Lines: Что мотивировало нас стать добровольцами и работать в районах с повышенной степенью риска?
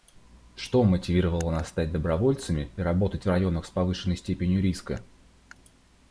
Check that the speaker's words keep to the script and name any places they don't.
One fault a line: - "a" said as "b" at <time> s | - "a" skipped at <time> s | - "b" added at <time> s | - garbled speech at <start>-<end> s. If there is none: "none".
none